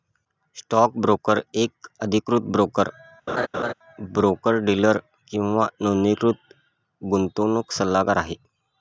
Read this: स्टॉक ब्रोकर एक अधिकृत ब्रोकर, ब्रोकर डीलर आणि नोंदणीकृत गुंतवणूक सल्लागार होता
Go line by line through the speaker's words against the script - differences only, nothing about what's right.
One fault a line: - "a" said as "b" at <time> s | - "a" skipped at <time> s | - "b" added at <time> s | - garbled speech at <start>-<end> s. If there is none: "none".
- "आणि" said as "किंवा" at 5.3 s
- "होता" said as "आहे" at 8.2 s